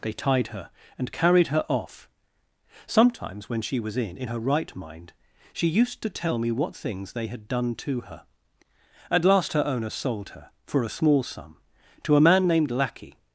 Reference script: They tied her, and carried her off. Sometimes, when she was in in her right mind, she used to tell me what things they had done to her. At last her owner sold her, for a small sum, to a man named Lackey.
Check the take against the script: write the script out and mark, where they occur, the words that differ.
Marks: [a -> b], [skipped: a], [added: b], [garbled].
They tied her, and carried her off. Sometimes, when she was in in her right mind, she used to tell me what things they had done to her. At last her owner sold her, for a small sum, to a man named Lackey.